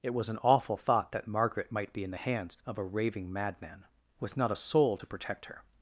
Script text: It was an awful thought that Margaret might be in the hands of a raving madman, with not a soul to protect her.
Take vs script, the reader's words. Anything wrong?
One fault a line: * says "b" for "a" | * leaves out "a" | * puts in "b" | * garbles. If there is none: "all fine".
all fine